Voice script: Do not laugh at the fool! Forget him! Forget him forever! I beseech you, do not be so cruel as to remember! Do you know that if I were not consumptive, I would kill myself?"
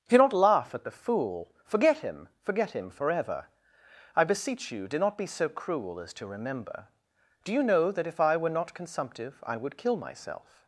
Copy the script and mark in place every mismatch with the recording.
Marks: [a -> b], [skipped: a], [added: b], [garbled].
Do not laugh at the fool! Forget him! Forget him forever! I beseech you, do not be so cruel as to remember! Do you know that if I were not consumptive, I would kill myself?"